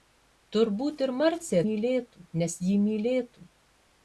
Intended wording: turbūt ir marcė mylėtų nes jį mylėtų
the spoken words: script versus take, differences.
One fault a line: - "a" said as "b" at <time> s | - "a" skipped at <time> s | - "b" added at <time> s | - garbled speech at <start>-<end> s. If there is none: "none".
none